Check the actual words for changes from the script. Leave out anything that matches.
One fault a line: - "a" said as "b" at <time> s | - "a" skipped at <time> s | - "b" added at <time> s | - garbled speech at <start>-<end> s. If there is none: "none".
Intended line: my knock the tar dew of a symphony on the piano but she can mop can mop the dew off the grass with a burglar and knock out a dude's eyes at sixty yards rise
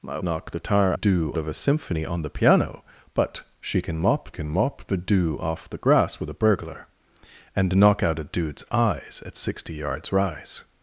none